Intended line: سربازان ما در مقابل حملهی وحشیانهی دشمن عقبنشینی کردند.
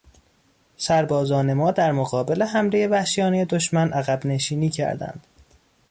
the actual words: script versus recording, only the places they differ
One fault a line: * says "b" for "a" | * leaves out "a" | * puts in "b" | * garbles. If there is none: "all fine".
all fine